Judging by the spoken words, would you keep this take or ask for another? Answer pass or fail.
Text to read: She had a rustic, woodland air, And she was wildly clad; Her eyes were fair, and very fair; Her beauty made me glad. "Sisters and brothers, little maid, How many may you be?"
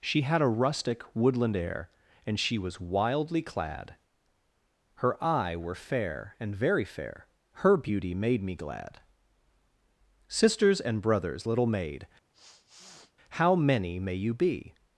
fail